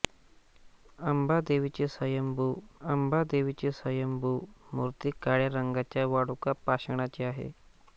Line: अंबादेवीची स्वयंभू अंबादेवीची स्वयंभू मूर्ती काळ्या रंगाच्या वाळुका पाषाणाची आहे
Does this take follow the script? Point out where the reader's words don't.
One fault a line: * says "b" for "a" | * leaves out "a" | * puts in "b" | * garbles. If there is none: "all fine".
all fine